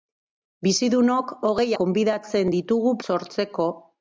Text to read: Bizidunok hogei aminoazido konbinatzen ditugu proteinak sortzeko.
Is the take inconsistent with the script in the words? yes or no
yes